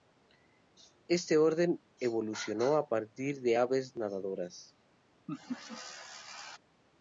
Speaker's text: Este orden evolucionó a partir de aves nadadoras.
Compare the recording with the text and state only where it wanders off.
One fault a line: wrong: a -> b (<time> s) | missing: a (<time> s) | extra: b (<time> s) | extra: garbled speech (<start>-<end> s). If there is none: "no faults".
no faults